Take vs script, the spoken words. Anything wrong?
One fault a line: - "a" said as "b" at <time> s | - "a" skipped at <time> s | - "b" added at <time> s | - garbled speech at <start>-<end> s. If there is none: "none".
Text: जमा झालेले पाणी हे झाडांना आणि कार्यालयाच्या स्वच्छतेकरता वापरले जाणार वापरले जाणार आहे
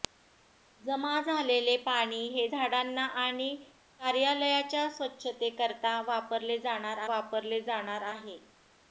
none